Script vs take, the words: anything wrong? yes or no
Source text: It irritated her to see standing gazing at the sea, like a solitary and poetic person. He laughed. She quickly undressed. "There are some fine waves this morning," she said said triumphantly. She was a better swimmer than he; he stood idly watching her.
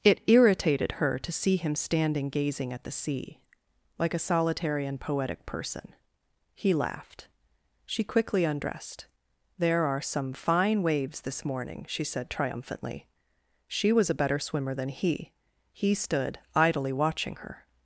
yes